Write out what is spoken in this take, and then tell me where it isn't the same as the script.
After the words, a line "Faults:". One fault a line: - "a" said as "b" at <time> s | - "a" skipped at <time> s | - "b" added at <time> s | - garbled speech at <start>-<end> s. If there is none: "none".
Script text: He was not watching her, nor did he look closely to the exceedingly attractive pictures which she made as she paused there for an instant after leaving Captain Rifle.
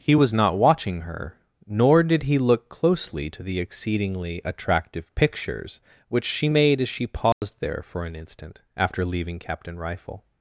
He was not watching her, nor did he look closely to the exceedingly attractive pictures which she made as she paused there for an instant after leaving Captain Rifle.
Faults:
none